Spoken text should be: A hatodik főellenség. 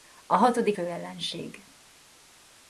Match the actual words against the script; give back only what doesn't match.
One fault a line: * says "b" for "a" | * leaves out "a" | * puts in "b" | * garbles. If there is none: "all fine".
all fine